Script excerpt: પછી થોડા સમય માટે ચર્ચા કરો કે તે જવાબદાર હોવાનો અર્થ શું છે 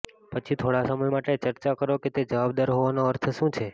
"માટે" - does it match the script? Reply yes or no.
yes